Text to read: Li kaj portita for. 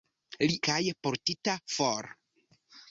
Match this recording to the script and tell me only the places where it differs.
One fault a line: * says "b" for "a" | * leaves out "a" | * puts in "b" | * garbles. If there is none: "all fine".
all fine